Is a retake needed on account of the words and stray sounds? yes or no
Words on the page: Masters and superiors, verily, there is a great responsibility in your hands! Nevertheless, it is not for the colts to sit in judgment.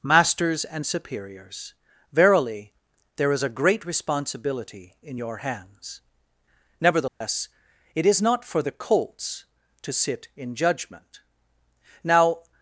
yes